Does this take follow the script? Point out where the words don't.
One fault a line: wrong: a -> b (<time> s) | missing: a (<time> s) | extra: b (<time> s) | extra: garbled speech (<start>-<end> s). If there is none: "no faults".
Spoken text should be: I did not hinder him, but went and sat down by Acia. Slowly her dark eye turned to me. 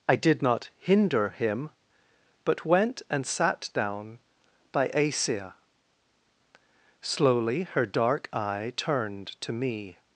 no faults